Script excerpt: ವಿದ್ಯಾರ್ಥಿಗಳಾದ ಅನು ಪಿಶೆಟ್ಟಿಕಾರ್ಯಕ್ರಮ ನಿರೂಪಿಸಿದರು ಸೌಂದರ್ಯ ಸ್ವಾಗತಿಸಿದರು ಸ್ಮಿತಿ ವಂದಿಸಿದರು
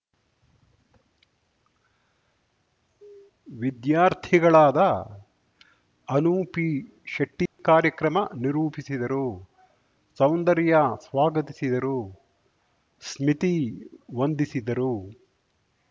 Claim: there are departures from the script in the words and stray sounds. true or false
true